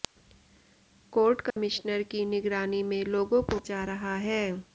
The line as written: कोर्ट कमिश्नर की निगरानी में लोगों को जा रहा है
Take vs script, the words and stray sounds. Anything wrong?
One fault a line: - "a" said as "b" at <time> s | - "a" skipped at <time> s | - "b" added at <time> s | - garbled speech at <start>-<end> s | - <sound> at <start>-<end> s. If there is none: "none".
- dropout at 1.5-1.6 s